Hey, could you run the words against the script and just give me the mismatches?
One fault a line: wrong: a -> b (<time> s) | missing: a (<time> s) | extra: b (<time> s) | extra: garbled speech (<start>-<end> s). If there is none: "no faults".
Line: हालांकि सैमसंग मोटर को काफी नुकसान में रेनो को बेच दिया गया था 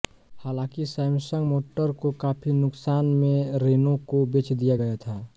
no faults